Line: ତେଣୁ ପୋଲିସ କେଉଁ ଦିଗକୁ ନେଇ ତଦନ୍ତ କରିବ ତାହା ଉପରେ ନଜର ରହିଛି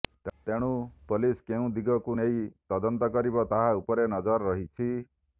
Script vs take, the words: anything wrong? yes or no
no